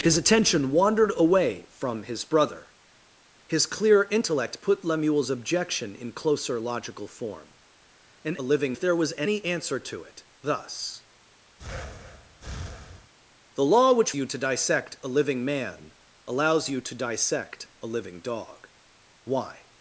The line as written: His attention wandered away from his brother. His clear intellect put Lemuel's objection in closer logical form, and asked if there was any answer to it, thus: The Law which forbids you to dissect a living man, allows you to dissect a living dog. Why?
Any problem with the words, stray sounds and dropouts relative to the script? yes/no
yes